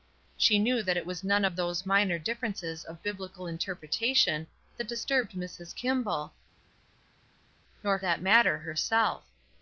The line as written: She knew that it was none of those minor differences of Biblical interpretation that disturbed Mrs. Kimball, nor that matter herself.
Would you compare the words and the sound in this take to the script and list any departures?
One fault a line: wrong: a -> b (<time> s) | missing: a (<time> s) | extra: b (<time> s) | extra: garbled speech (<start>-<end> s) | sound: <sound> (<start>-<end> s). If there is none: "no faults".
no faults